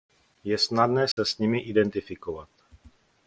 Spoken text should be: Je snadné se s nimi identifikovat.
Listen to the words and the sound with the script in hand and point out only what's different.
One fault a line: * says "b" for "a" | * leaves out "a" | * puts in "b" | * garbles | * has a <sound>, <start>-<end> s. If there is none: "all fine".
* has a dropout, 1.1-1.2 s